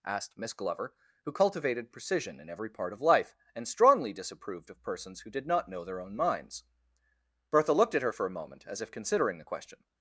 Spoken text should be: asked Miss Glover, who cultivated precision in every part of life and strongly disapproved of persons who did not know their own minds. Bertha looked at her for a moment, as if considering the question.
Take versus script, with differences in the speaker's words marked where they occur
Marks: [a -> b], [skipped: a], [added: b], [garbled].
asked Miss Glover, who cultivated precision in every part of life and strongly disapproved of persons who did not know their own minds. Bertha looked at her for a moment, as if considering the question.